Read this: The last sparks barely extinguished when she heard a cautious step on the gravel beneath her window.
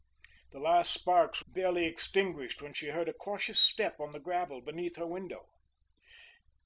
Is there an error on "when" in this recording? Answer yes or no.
no